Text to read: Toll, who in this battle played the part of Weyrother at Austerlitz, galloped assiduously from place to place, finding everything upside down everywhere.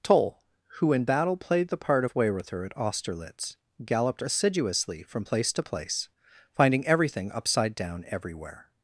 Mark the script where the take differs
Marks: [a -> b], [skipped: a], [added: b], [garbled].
Toll, who in [skipped: this] battle played the part of Weyrother at Austerlitz, galloped assiduously from place to place, finding everything upside down everywhere.